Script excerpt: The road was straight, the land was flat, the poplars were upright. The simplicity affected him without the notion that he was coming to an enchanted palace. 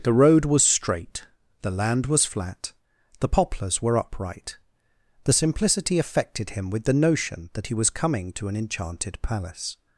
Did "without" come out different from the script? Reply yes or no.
yes